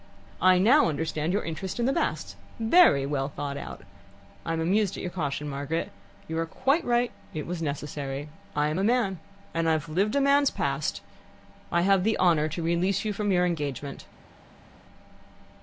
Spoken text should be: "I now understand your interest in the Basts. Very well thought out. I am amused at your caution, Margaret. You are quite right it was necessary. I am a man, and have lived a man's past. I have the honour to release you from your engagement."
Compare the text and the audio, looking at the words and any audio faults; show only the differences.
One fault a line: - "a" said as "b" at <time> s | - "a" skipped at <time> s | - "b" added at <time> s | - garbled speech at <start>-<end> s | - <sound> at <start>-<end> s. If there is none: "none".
none